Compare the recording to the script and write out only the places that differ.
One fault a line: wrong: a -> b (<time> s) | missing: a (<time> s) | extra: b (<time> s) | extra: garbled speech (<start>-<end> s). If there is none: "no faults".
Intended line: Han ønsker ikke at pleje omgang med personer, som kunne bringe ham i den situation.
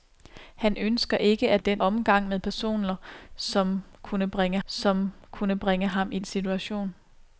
wrong: pleje -> den (1.6 s)
extra: som kunne bringe (4.6 s)
missing: den (6.2 s)